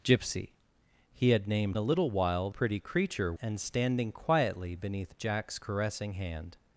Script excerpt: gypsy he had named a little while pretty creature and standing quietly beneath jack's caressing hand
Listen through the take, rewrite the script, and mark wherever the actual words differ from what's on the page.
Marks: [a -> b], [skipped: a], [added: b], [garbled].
gypsy he had named a little while pretty creature and standing quietly beneath jack's caressing hand